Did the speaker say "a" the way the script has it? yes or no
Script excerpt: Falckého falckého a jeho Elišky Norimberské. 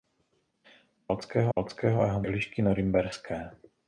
yes